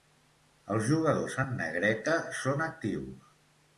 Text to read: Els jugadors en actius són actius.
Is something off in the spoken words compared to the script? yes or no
yes